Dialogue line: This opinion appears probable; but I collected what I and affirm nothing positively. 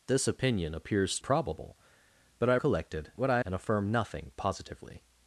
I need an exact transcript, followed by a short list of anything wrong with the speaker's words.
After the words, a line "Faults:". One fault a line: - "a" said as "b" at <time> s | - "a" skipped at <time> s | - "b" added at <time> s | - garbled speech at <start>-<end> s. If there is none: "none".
This opinion appears probable; but I collected what I and affirm nothing positively.
Faults:
none